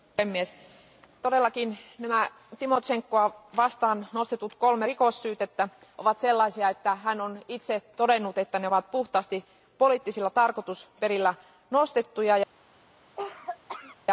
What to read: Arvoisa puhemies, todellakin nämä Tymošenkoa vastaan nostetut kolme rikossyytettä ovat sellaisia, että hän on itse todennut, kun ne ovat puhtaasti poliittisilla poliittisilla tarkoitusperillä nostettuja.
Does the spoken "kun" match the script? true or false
false